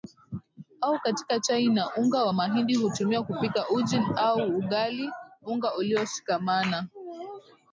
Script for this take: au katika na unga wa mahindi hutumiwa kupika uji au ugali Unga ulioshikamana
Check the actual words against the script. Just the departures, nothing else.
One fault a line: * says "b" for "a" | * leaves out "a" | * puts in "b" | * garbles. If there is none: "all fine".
* puts in "chai"